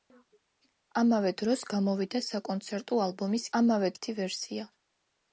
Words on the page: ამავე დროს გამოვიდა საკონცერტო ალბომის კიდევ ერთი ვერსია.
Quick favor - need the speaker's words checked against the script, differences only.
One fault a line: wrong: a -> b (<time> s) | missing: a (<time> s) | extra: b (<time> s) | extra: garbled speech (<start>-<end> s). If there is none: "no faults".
wrong: კიდევ -> ამავე (3.6 s)